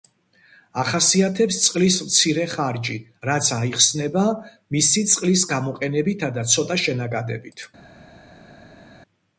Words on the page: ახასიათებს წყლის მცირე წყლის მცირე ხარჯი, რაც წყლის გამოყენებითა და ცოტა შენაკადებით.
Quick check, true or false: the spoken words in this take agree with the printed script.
false